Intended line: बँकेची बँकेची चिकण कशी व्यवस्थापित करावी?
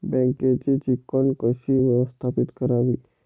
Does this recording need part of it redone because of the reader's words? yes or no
yes